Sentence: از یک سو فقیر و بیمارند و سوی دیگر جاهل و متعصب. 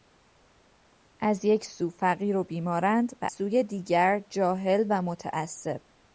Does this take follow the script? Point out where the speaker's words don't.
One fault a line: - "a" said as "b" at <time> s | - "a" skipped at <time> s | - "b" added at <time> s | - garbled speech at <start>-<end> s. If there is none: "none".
none